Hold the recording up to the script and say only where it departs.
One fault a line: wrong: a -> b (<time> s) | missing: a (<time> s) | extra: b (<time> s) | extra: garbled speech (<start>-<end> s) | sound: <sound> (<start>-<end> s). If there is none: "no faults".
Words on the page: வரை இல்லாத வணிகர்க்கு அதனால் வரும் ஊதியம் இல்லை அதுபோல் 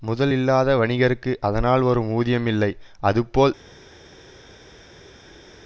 wrong: வரை -> முதல் (0.0 s)